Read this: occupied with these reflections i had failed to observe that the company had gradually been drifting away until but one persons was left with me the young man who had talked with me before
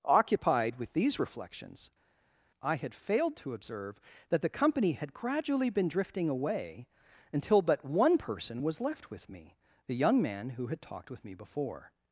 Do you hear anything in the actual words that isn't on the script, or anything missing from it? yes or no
yes